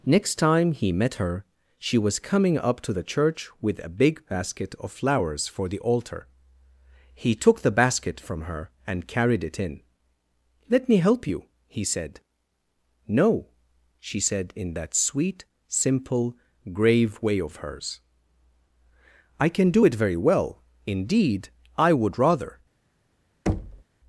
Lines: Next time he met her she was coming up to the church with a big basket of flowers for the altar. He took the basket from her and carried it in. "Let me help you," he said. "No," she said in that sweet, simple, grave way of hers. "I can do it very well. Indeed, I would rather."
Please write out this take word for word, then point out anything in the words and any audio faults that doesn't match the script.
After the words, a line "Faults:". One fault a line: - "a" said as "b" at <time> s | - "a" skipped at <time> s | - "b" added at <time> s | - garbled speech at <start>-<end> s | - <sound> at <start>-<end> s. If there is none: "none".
Next time he met her she was coming up to the church with a big basket of flowers for the altar. He took the basket from her and carried it in. "Let me help you," he said. "No," she said in that sweet, simple, grave way of hers. "I can do it very well. Indeed, I would rather."
Faults:
- thud at 23.5-23.8 s